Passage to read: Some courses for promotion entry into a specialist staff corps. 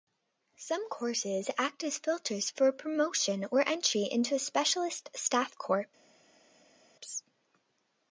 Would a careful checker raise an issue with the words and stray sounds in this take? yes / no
yes